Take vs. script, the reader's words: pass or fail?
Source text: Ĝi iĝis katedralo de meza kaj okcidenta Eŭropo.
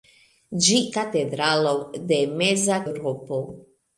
fail